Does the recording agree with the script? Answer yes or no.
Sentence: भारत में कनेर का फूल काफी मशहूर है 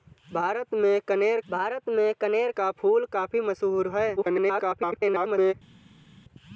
no